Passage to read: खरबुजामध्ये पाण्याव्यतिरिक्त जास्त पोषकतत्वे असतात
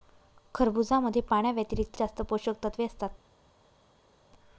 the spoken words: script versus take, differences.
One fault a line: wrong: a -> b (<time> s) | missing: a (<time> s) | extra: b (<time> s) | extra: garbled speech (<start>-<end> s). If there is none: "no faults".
no faults